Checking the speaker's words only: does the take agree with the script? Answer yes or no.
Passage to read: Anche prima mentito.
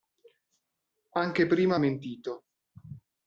yes